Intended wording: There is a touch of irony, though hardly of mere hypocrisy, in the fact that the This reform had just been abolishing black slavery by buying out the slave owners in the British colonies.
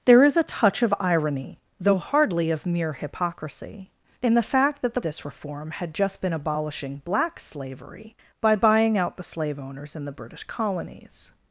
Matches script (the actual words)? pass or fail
pass